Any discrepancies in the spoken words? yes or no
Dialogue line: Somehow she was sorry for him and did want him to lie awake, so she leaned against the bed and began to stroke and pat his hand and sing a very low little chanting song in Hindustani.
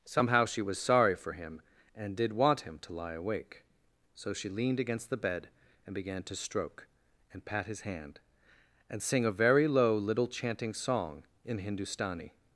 no